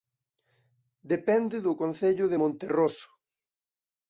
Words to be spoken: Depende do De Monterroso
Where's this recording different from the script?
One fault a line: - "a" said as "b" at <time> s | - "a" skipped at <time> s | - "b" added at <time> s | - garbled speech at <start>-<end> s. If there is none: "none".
- "Concello" added at 1.8 s